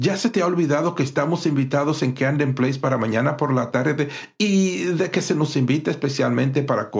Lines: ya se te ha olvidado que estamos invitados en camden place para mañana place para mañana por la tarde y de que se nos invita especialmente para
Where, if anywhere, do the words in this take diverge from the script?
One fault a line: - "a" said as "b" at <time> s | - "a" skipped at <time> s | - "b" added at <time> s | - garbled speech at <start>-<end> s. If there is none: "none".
- "place para mañana" skipped at 3.4 s